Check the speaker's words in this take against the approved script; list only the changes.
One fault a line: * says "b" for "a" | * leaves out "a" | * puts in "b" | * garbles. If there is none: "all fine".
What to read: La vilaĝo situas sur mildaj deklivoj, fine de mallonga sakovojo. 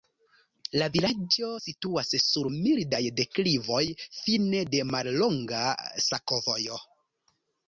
all fine